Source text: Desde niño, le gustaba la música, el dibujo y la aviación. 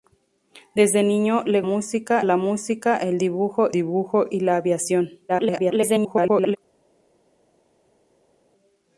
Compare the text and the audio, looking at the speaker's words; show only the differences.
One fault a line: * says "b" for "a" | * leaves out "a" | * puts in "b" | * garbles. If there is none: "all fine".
* says "música" for "gustaba"
* puts in "dibujo"
* garbles